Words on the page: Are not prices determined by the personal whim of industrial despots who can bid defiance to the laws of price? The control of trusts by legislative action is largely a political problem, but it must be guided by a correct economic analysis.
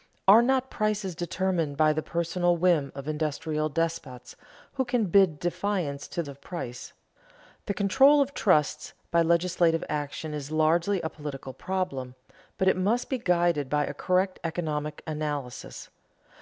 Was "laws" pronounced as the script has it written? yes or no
no